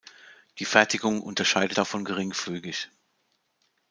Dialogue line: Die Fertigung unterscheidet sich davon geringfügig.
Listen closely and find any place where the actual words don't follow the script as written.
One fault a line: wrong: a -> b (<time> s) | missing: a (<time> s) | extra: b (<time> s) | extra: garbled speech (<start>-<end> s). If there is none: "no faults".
missing: sich (1.8 s)